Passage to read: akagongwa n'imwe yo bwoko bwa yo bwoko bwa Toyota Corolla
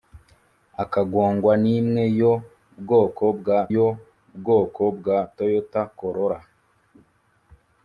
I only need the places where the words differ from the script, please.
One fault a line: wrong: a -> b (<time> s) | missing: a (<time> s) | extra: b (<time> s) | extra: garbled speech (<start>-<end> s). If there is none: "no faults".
no faults